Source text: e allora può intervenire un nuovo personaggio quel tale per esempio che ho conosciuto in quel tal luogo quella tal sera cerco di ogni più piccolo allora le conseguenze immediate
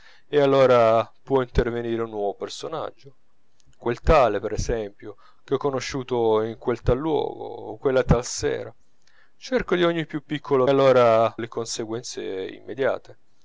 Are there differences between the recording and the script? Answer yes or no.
no